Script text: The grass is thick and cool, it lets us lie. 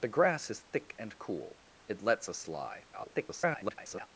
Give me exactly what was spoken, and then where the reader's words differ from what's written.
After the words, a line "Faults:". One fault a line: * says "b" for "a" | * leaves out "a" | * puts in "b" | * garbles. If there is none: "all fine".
The grass is thick and cool, it lets us lie. [garbled]
Faults:
* garbles